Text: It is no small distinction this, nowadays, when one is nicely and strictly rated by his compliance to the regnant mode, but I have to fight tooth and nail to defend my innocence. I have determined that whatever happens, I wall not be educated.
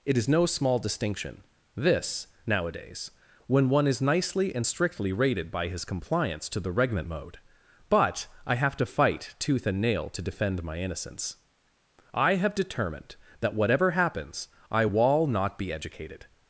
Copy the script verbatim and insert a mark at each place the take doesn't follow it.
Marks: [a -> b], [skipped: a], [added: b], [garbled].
It is no small distinction this, nowadays, when one is nicely and strictly rated by his compliance to the regnant mode, but I have to fight tooth and nail to defend my innocence. I have determined that whatever happens, I wall not be educated.